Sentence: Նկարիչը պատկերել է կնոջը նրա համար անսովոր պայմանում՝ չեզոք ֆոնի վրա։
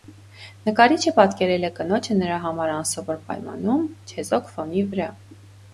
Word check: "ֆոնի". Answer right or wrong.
right